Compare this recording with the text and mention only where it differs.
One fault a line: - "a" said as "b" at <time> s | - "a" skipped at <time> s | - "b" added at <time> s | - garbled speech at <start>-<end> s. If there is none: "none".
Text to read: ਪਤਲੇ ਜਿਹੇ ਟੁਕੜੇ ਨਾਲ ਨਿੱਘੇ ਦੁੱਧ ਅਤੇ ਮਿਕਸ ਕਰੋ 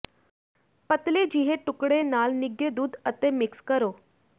none